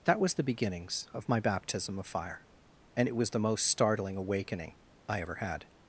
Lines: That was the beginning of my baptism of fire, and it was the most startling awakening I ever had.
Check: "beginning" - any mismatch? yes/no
yes